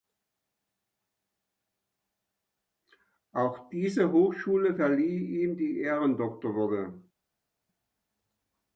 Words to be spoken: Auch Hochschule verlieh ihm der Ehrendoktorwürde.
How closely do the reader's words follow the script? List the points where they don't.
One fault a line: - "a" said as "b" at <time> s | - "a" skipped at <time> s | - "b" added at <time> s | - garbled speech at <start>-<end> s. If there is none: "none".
- "diese" added at 3.7 s
- "der" said as "die" at 5.6 s